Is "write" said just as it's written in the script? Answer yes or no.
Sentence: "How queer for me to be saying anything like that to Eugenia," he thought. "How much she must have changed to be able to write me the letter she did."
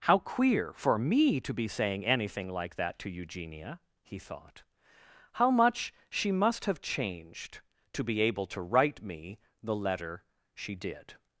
yes